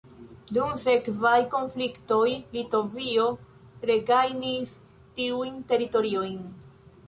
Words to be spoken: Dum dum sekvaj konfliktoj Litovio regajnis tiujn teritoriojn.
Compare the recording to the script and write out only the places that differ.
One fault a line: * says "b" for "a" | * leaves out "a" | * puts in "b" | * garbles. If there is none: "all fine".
* leaves out "dum"